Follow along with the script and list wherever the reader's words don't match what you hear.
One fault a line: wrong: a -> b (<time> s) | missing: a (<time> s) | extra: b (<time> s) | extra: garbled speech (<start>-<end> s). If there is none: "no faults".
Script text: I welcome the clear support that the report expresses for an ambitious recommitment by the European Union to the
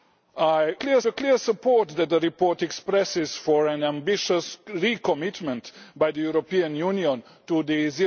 wrong: welcome -> clear (0.8 s)